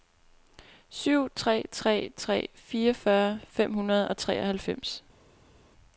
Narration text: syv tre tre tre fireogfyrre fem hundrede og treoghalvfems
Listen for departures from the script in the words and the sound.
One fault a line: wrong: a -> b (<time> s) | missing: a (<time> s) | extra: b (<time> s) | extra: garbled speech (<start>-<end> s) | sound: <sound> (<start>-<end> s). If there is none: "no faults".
no faults